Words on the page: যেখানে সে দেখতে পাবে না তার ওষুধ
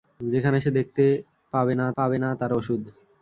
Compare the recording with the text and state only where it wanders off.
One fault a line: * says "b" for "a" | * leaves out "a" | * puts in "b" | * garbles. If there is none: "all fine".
* puts in "পাবে না"